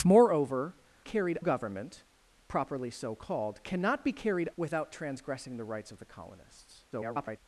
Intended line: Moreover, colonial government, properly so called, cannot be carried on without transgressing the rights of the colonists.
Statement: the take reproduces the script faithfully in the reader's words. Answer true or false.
false